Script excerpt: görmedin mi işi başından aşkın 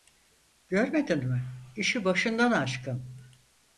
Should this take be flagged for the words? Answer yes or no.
no